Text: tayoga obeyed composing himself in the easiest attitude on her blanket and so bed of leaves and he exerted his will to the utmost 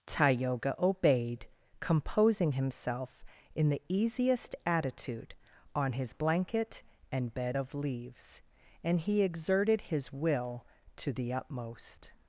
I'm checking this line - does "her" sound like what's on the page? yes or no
no